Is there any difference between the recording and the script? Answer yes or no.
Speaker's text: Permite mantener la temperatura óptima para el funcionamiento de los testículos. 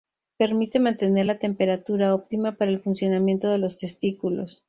no